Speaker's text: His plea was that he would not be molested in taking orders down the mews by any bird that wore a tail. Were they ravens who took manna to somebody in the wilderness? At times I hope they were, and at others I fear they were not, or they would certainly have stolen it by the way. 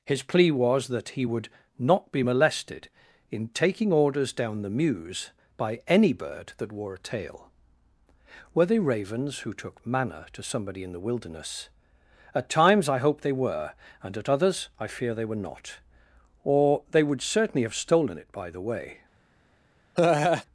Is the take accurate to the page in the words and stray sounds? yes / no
no